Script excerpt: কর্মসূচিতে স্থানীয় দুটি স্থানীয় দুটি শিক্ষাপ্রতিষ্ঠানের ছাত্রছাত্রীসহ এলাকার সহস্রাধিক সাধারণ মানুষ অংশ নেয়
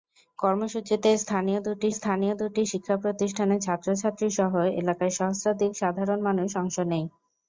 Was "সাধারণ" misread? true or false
false